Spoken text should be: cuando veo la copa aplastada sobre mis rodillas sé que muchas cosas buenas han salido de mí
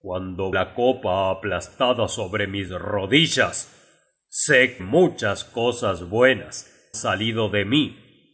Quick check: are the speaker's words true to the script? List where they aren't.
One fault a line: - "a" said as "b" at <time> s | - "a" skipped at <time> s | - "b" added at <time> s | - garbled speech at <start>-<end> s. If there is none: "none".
- "veo" skipped at 0.5 s
- "que" skipped at 4.8 s
- "han" skipped at 6.7 s